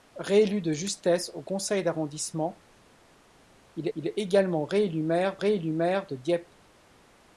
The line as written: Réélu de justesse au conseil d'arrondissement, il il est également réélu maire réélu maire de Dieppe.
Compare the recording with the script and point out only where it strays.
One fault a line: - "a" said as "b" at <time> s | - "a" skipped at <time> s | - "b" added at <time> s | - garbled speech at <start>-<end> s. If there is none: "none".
none